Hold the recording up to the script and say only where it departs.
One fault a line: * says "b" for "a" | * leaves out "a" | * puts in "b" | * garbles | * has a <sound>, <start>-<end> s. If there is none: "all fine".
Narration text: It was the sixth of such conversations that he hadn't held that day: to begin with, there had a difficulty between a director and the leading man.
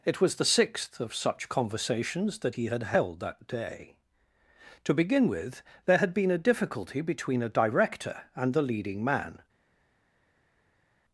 * says "had" for "hadn't"
* puts in "been"